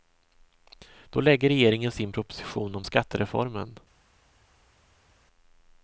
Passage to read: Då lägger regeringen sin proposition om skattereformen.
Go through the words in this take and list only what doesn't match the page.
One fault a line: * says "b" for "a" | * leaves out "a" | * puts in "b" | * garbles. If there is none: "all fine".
all fine